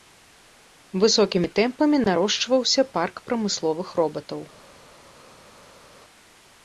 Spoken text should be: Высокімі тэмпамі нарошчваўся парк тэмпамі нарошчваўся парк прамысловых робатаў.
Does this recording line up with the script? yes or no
no